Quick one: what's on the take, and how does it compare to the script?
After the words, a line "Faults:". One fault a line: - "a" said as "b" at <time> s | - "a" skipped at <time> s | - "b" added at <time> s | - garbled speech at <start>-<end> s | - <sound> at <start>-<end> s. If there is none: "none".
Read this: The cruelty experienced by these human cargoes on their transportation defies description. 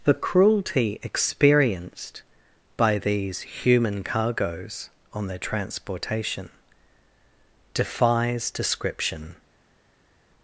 The cruelty experienced by these human cargoes on their transportation defies description.
Faults:
none